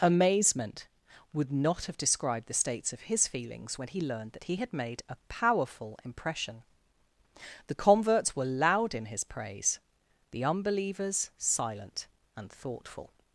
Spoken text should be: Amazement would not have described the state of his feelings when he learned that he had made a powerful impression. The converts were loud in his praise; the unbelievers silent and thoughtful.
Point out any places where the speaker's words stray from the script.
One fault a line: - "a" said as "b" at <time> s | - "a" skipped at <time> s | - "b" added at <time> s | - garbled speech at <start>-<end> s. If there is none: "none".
- "state" said as "states" at 2.5 s